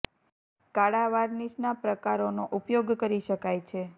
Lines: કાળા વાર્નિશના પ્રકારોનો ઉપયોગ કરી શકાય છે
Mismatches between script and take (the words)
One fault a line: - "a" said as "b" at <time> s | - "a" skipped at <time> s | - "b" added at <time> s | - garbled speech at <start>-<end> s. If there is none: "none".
none